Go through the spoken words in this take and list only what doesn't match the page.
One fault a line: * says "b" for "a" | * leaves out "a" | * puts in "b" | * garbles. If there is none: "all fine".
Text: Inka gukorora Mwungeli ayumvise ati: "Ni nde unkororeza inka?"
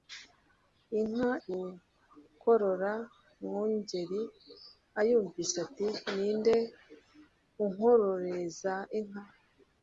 all fine